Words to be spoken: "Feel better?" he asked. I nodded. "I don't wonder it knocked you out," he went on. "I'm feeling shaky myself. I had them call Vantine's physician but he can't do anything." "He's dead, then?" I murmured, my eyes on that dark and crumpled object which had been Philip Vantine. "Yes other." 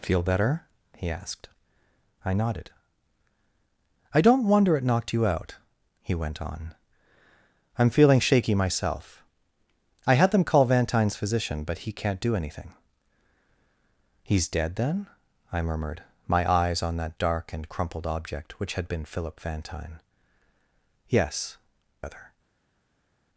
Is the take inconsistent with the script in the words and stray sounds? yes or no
no